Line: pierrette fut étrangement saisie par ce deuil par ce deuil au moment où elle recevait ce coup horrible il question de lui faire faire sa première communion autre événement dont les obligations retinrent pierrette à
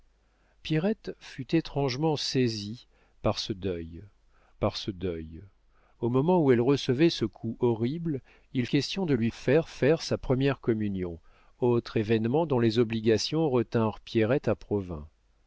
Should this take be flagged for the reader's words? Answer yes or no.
no